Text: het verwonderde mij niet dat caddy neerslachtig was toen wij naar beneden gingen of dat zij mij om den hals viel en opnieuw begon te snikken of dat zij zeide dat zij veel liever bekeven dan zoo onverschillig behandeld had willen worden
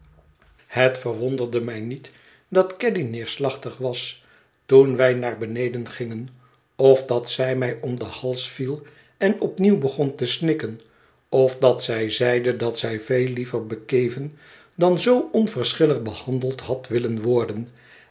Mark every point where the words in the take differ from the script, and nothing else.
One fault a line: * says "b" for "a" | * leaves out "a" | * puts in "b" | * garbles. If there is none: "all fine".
all fine